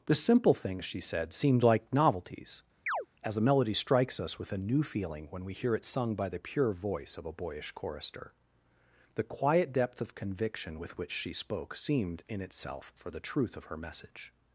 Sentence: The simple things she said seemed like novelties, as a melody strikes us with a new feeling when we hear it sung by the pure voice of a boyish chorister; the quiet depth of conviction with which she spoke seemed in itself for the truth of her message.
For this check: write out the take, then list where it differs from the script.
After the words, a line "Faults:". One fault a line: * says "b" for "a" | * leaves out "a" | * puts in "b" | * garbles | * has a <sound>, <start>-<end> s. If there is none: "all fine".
The simple things she said seemed like novelties, as a melody strikes us with a new feeling when we hear it sung by the pure voice of a boyish chorister; the quiet depth of conviction with which she spoke seemed in itself for the truth of her message.
Faults:
* has a chirp, 2.9-3.1 s